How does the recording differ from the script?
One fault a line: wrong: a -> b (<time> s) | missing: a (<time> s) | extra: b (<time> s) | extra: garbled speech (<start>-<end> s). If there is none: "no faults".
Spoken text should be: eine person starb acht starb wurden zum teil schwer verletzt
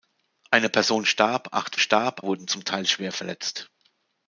no faults